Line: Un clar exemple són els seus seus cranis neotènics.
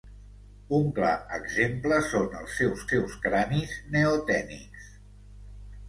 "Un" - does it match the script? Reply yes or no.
yes